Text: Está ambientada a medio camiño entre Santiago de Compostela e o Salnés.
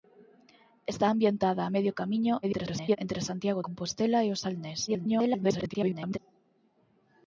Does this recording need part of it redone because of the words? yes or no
yes